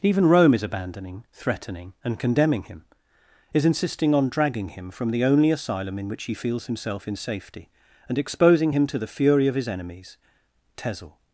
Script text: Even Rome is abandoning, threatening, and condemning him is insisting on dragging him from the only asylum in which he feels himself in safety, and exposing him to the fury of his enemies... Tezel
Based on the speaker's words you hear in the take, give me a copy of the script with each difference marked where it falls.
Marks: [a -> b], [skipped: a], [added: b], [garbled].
Even Rome is abandoning, threatening, and condemning him is insisting on dragging him from the only asylum in which he feels himself in safety, and exposing him to the fury of his enemies... Tezel